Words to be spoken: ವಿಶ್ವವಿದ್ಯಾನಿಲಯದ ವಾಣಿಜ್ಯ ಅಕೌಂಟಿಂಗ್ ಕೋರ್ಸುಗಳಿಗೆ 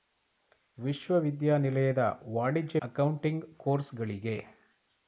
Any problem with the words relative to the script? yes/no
no